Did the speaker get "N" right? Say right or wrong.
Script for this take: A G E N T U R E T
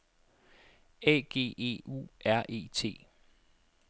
wrong